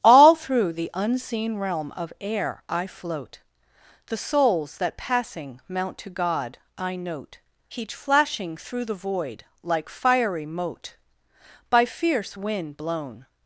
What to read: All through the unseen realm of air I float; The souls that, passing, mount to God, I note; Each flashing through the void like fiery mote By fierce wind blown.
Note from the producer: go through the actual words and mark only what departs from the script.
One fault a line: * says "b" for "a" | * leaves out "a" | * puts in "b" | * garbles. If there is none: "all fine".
all fine